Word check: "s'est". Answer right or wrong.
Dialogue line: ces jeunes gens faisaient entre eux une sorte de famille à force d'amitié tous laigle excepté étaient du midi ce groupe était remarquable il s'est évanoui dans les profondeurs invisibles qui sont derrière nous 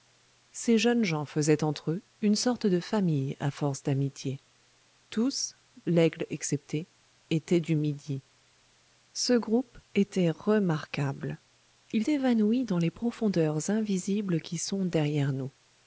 wrong